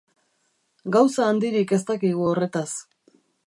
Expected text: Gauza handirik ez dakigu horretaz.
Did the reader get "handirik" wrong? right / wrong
right